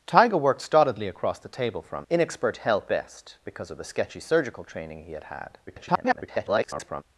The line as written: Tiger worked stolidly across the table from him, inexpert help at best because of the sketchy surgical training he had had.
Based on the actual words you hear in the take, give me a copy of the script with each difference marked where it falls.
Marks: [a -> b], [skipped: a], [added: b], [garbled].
Tiger worked stolidly across the table from [skipped: him,] inexpert help [skipped: at] best because of the sketchy surgical training he had had. [garbled]